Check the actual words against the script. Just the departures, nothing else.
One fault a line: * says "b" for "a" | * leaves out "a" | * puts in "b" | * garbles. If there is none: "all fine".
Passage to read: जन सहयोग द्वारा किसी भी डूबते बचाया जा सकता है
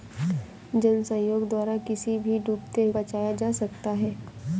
all fine